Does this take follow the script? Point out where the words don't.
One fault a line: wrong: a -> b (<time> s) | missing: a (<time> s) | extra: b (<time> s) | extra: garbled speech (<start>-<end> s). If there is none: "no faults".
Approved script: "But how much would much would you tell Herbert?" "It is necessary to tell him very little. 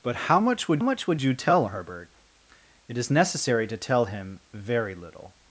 no faults